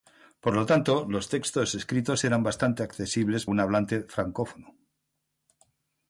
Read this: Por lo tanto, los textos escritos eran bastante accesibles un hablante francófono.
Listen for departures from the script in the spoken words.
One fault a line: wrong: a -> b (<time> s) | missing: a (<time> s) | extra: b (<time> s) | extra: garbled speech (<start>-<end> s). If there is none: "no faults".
no faults